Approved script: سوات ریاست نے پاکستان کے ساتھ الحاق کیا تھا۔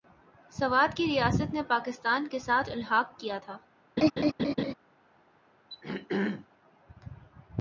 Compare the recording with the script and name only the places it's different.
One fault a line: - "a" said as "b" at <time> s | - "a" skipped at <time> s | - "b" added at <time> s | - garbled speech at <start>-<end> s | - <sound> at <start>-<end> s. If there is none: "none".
- "کی" added at 1.0 s
- laugh at 4.0-4.7 s
- throat clearing at 5.7-6.5 s